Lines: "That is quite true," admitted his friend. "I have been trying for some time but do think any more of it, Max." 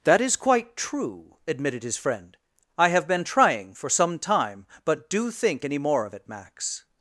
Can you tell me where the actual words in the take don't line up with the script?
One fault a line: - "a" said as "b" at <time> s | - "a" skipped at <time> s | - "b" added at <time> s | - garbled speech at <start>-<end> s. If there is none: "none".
none